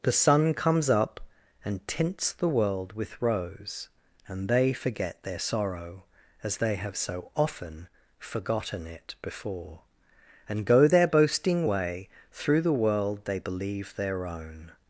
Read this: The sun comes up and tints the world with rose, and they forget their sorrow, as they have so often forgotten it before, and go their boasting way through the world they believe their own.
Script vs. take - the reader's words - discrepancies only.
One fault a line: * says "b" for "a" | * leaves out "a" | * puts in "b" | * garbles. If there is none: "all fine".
all fine